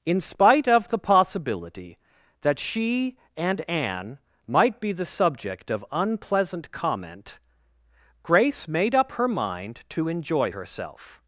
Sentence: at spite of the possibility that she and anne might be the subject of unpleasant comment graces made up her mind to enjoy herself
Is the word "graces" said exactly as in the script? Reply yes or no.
no